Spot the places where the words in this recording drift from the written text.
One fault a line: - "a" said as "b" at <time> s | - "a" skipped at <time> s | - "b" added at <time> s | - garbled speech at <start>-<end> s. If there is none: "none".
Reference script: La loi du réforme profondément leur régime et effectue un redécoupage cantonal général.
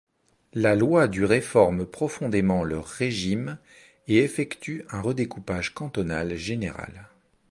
none